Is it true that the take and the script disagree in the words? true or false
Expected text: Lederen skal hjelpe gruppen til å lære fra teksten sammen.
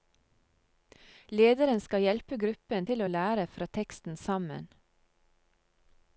false